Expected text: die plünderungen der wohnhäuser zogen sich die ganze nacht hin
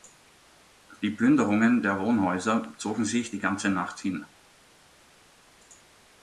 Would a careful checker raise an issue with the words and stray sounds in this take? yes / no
no